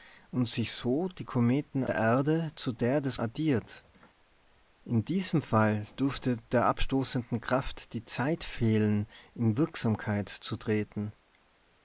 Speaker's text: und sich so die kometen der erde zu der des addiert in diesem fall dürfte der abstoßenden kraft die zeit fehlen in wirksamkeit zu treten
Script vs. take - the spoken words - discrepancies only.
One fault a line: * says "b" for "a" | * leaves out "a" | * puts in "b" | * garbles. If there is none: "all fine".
all fine